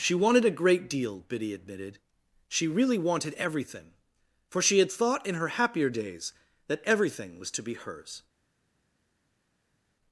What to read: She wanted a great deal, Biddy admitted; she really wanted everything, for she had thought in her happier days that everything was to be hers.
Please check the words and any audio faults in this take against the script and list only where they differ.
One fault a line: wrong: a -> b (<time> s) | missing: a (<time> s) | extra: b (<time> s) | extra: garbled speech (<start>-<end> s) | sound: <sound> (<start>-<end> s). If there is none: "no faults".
no faults